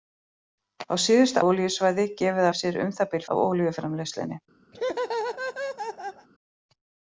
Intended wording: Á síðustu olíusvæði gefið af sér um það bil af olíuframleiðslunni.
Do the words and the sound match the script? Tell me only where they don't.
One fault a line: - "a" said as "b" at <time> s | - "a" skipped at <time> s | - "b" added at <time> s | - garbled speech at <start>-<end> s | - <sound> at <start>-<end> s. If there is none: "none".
- laugh at 4.7-6.3 s